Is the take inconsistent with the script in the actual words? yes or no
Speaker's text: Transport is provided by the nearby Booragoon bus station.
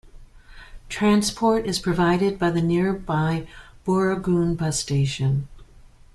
no